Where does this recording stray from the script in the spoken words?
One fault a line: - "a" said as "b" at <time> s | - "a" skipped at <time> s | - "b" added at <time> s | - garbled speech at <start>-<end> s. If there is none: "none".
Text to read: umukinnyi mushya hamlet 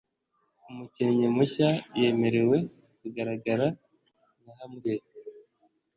- "yemerewe kugaragara nka" added at 2.0 s